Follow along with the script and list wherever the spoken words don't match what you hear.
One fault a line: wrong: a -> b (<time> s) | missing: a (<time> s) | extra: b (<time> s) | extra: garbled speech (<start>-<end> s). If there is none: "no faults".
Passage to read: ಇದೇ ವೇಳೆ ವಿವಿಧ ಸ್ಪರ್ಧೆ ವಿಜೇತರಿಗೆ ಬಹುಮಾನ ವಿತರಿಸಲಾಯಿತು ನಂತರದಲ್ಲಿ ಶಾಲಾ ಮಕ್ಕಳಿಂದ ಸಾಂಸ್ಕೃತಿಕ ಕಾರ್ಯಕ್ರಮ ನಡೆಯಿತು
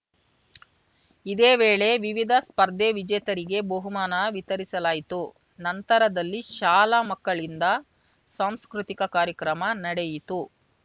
no faults